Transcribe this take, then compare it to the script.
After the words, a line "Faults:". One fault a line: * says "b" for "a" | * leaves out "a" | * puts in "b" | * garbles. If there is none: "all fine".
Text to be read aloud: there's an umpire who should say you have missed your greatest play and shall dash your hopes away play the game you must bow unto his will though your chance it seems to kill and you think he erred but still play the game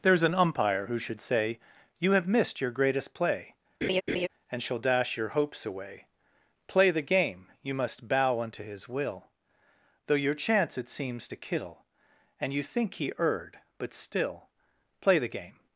there's an umpire who should say you have missed your greatest play and shall dash your hopes away play the game you must bow unto his will though your chance it seems to kill and you think he erred but still play the game
Faults:
all fine